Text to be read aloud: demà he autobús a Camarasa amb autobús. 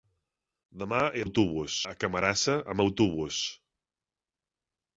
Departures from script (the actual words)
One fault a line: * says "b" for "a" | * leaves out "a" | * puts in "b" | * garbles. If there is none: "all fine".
all fine